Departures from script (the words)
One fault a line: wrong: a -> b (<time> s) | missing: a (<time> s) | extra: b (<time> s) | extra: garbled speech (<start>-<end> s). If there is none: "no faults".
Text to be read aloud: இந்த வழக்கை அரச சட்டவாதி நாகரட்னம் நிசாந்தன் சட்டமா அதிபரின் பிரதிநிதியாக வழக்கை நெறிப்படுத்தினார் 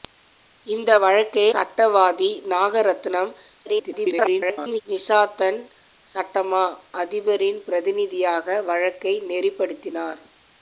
missing: அரச (1.5 s)
extra: garbled speech (3.7-4.8 s)